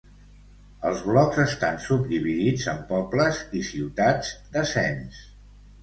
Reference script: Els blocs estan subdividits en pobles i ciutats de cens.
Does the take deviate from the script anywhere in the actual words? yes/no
no